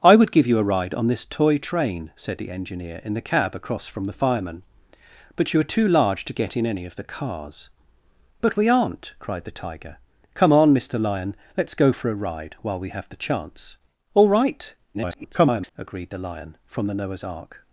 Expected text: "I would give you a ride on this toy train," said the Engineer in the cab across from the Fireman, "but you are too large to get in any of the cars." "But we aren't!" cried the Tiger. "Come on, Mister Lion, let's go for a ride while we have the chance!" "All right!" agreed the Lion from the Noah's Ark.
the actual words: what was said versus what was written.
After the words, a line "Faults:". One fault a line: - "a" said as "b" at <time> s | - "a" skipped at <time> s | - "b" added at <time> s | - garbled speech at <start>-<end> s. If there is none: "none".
"I would give you a ride on this toy train," said the Engineer in the cab across from the Fireman, "but you are too large to get in any of the cars." "But we aren't!" cried the Tiger. "Come on, Mister Lion, let's go for a ride while we have the chance!" "All right!" [garbled] agreed the Lion from the Noah's Ark.
Faults:
- garbled speech at 14.9-15.7 s